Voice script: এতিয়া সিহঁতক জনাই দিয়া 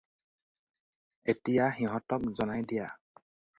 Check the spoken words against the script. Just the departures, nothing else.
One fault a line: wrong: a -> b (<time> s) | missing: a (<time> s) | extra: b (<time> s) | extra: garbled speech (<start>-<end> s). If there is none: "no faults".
no faults